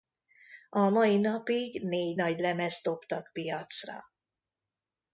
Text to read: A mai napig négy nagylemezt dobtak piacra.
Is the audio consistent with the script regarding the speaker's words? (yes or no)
yes